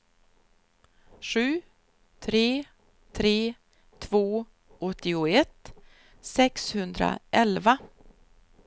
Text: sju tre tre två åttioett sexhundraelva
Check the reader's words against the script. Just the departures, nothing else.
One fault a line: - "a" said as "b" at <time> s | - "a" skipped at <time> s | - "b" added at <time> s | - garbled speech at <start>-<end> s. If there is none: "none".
none